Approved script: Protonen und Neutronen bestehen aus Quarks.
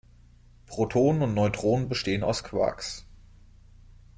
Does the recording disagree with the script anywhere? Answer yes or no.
no